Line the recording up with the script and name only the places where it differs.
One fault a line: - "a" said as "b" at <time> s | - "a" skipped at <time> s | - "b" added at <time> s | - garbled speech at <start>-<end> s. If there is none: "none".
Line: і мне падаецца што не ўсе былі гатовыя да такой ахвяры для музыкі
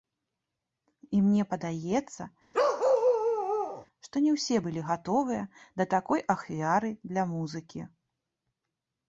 none